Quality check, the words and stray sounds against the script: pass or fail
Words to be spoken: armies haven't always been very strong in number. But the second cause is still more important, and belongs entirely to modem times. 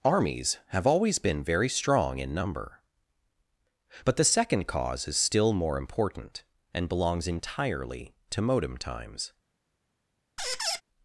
fail